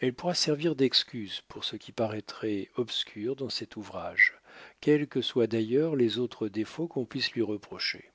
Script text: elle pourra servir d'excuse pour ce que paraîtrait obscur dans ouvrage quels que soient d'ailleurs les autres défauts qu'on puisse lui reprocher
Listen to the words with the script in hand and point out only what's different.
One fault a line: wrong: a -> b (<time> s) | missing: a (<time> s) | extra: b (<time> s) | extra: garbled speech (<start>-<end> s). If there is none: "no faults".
wrong: que -> qui (1.7 s)
extra: cet (3.5 s)